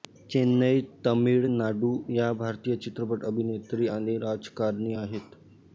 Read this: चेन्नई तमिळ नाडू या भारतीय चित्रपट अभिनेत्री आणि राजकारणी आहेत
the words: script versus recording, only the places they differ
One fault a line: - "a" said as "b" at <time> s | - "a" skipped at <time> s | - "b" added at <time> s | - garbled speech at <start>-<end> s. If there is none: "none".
none